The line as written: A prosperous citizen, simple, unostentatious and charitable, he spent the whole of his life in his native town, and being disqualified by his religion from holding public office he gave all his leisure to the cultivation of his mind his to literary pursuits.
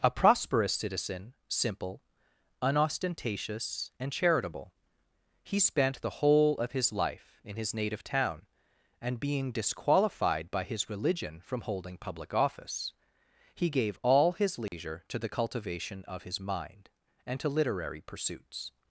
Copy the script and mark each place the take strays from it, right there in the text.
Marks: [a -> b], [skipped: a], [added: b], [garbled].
A prosperous citizen, simple, unostentatious and charitable, he spent the whole of his life in his native town, and being disqualified by his religion from holding public office he gave all his leisure to the cultivation of his mind [his -> and] to literary pursuits.